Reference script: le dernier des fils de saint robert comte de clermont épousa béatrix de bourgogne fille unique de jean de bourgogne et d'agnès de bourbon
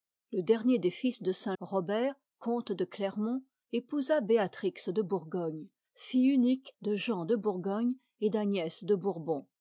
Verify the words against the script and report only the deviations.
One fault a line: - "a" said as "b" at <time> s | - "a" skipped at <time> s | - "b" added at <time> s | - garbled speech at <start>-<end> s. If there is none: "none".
none